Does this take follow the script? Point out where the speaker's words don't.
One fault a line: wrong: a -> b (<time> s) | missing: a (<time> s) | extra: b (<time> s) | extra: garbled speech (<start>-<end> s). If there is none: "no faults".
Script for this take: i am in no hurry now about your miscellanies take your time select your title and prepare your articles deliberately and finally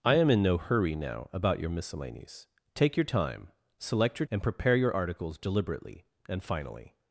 missing: title (4.2 s)